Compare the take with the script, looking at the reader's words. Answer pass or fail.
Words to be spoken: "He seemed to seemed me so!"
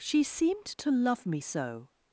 fail